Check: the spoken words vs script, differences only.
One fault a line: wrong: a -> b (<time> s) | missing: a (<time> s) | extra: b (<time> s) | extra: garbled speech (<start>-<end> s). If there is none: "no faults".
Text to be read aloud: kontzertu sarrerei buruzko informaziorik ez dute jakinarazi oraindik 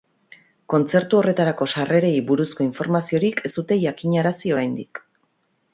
extra: horretarako (1.2 s)